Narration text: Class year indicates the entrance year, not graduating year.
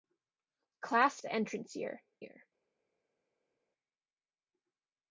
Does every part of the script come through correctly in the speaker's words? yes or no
no